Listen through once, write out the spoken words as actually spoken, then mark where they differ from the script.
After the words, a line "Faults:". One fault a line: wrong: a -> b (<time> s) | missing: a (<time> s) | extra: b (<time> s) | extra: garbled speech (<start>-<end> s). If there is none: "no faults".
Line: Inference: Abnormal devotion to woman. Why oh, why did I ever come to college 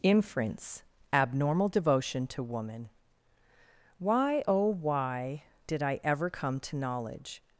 Inference: Abnormal devotion to woman. Why oh, why did I ever come to knowledge
Faults:
wrong: college -> knowledge (6.8 s)